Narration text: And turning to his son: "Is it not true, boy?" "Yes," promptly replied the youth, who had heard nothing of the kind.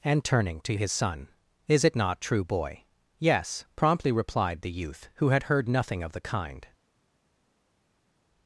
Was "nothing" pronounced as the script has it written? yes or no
yes